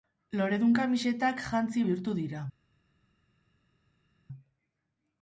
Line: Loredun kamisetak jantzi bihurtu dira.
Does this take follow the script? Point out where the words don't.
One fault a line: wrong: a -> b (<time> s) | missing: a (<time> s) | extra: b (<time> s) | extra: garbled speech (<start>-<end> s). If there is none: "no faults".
no faults